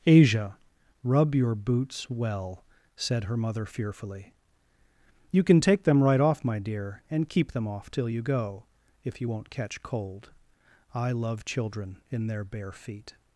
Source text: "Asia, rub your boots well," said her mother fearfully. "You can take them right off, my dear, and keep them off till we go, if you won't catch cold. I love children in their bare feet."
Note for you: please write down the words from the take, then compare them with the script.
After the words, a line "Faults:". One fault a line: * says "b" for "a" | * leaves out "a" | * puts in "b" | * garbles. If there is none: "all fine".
"Asia, rub your boots well," said her mother fearfully. "You can take them right off, my dear, and keep them off till you go, if you won't catch cold. I love children in their bare feet."
Faults:
* says "you" for "we"